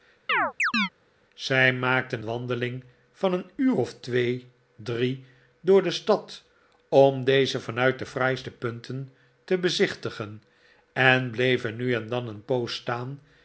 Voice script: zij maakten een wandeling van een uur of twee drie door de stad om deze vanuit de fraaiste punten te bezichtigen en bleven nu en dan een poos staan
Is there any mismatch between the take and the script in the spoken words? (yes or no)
yes